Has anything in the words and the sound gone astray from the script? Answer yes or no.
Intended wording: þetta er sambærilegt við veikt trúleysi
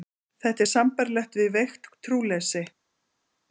no